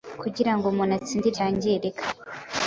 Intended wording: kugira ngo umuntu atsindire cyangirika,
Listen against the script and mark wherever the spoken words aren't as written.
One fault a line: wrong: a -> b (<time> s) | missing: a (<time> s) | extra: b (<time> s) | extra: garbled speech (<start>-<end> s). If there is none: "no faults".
no faults